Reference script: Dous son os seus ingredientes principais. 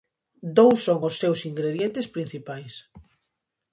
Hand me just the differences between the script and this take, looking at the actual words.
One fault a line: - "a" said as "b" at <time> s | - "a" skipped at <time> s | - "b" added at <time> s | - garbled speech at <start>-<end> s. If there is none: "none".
none